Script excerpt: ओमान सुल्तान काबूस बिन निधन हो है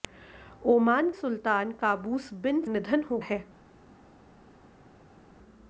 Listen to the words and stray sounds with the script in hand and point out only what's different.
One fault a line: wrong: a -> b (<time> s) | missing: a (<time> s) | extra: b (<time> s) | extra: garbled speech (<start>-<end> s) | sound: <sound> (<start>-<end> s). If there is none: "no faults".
no faults